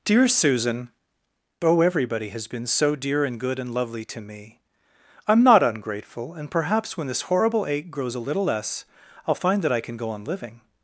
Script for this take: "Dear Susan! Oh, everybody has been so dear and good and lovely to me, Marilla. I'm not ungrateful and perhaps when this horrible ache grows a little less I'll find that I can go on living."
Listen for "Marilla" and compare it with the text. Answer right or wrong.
wrong